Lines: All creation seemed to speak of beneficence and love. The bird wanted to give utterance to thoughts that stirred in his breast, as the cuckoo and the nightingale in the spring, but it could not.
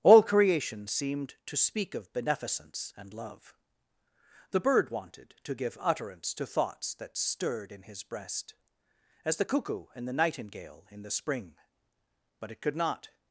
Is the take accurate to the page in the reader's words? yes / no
yes